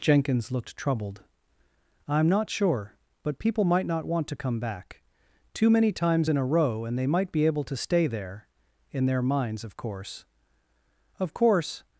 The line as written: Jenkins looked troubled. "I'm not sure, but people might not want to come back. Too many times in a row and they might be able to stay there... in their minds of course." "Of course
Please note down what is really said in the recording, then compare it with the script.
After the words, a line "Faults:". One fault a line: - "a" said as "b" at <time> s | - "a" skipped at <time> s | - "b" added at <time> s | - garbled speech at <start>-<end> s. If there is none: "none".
Jenkins looked troubled. "I'm not sure, but people might not want to come back. Too many times in a row and they might be able to stay there... in their minds of course." "Of course
Faults:
none